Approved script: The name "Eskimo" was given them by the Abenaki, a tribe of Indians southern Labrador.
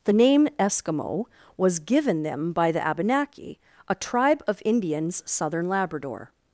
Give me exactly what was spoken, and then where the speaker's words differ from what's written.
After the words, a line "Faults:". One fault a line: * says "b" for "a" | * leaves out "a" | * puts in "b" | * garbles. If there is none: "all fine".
The name "Eskimo" was given them by the Abenaki, a tribe of Indians southern Labrador.
Faults:
all fine